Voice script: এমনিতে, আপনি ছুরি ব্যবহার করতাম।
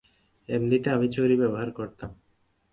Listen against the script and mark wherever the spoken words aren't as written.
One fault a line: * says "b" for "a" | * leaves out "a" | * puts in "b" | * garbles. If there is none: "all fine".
* says "আমি" for "আপনি"